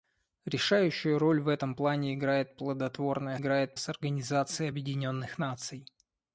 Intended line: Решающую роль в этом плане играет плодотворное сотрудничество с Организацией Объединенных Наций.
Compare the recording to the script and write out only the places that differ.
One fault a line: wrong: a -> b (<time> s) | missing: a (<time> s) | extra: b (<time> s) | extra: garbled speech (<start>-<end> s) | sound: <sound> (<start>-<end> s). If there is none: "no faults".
wrong: сотрудничество -> играет (3.4 s)